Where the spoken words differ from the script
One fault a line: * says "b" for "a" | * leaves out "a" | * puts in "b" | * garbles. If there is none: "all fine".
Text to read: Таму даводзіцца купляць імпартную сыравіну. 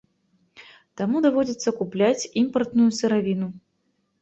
all fine